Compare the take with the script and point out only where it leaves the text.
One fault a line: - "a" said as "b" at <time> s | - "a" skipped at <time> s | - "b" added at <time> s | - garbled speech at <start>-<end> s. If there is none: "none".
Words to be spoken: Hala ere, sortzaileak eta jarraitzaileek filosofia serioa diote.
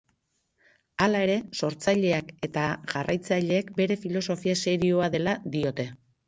- "bere" added at 3.8 s
- "dela" added at 5.2 s